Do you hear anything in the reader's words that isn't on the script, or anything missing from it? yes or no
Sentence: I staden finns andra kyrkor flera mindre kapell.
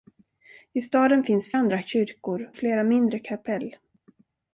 no